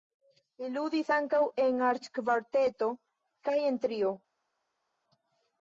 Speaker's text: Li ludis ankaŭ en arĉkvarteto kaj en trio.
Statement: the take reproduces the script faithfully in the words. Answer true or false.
true